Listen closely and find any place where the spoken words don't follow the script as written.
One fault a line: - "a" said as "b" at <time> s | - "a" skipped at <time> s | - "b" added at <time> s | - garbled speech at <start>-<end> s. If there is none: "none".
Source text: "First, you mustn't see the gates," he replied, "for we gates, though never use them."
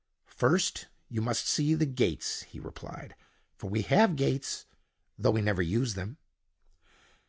- "mustn't" said as "must" at 1.2 s
- "have" added at 3.8 s
- "we" added at 5.3 s